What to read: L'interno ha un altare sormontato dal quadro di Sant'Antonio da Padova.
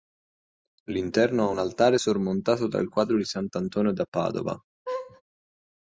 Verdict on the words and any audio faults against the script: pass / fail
fail